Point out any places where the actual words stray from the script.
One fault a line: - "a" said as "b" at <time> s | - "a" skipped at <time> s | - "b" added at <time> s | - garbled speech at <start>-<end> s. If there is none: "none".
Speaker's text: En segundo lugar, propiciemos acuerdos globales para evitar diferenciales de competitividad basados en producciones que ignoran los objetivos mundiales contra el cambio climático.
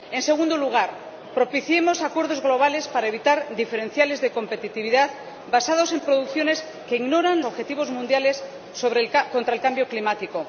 - "los" skipped at 7.4 s